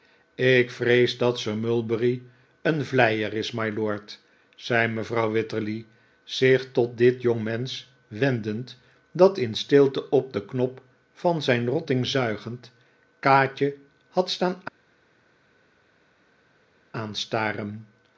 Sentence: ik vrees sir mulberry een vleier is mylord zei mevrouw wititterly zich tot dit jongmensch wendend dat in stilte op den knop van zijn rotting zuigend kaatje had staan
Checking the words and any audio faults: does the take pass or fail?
fail